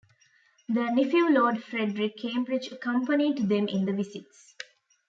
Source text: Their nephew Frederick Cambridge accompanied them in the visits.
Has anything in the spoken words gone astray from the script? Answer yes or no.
yes